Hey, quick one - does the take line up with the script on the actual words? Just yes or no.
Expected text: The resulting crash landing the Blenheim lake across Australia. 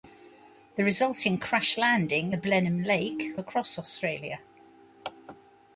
yes